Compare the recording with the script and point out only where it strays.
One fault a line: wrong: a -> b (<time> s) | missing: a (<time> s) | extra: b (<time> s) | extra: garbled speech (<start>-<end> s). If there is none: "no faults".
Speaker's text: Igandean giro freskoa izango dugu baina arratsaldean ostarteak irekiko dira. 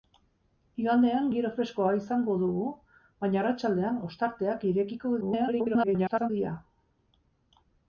extra: garbled speech (5.2-6.3 s)